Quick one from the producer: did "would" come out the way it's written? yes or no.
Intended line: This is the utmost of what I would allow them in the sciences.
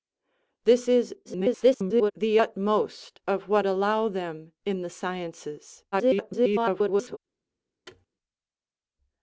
no